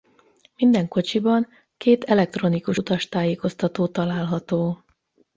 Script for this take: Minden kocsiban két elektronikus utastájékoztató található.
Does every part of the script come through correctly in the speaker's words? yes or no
yes